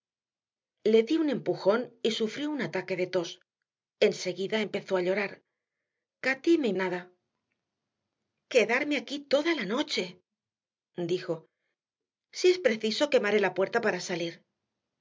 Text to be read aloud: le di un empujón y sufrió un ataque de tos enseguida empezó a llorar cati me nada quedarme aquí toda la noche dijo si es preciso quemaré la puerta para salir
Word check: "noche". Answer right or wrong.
right